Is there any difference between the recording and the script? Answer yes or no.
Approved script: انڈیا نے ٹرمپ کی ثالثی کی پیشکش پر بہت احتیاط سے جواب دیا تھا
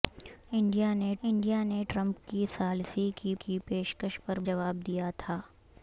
yes